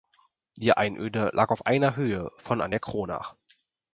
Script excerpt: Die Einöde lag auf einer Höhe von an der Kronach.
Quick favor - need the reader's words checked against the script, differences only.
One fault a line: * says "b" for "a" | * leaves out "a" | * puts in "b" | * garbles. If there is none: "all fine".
all fine